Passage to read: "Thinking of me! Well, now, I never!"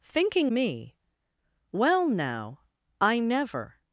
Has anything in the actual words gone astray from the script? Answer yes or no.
yes